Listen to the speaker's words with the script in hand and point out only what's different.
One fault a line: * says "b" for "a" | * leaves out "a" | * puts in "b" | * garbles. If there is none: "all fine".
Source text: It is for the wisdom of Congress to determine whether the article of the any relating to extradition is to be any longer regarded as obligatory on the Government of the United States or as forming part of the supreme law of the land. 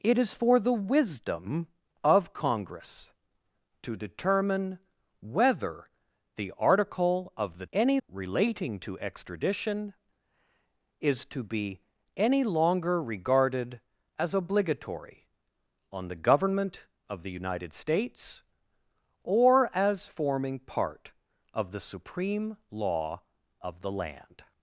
all fine